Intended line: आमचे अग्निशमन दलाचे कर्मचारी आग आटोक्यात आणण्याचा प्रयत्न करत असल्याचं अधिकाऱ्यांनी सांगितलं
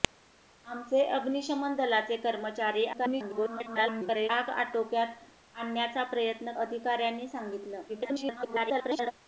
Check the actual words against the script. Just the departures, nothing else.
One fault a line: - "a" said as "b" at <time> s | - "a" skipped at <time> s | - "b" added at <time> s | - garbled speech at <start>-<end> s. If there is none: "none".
- garbled speech at 2.9-4.3 s
- "करत असल्याचं" skipped at 6.5 s
- garbled speech at 7.9-9.1 s